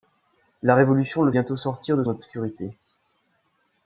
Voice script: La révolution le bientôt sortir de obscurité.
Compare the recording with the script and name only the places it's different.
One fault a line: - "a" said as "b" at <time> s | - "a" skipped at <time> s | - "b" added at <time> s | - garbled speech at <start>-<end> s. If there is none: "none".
none